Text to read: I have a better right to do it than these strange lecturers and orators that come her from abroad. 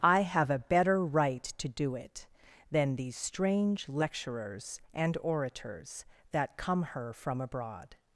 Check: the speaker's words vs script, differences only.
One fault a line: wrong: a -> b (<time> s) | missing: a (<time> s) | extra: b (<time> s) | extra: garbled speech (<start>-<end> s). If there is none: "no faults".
no faults